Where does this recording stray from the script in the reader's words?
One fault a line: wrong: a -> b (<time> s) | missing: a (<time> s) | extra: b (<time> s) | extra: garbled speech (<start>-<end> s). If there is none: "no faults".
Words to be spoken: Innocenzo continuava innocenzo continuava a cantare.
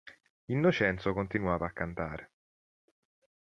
missing: innocenzo continuava (1.7 s)